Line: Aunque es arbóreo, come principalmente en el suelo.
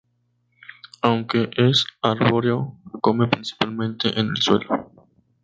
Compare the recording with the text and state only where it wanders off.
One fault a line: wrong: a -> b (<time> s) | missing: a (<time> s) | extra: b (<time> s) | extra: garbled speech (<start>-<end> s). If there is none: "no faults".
no faults